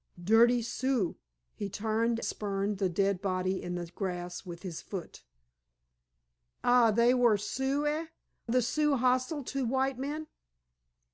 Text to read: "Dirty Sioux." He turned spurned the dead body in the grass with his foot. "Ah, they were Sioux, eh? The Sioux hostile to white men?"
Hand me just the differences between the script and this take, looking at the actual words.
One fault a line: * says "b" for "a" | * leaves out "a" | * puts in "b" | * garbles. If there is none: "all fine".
all fine